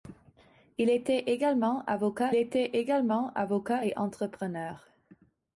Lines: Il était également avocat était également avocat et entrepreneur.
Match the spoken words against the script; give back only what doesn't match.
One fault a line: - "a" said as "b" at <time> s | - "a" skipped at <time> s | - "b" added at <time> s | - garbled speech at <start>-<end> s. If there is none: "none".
none